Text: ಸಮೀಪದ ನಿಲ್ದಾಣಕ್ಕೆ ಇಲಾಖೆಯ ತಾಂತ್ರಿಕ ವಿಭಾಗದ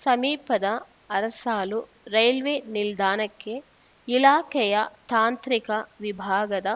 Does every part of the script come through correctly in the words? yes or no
no